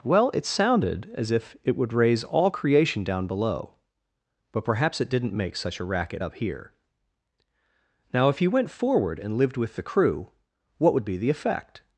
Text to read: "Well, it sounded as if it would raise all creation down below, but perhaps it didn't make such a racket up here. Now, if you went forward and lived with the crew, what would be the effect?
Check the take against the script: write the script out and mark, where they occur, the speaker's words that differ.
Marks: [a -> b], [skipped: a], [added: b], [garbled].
"Well, it sounded as if it would raise all creation down below, but perhaps it didn't make such a racket up here. Now, if you went forward and lived with the crew, what would be the effect?